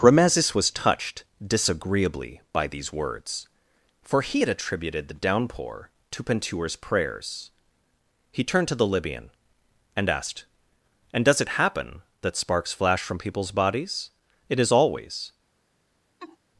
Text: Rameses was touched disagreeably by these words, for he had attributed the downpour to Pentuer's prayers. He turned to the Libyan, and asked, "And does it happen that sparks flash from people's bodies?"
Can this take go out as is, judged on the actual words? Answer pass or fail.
fail